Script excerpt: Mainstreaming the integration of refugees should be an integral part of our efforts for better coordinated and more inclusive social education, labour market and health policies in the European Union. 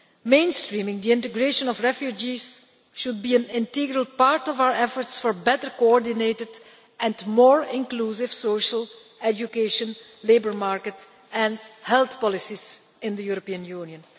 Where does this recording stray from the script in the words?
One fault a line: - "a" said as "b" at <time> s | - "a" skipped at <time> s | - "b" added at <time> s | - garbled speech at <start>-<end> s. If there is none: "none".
none